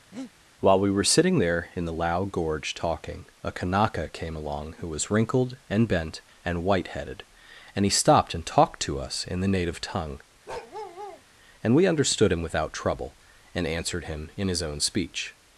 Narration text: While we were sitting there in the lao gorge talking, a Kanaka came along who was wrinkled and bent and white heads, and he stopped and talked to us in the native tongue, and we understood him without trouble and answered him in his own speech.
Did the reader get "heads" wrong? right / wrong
wrong